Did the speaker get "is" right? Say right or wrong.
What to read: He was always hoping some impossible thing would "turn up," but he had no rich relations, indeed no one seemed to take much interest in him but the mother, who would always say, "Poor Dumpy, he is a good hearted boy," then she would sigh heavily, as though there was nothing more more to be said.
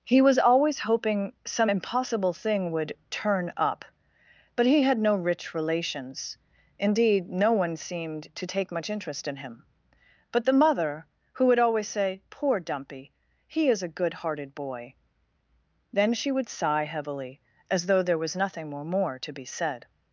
right